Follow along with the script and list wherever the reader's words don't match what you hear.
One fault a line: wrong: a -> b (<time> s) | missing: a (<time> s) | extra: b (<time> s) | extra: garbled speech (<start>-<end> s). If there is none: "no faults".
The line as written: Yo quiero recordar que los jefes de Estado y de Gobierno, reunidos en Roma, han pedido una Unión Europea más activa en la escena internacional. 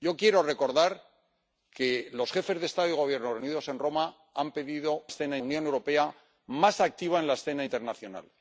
wrong: una -> escena (5.1 s)